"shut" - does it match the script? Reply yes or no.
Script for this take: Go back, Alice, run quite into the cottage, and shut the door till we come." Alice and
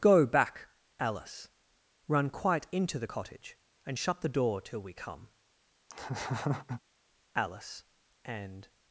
yes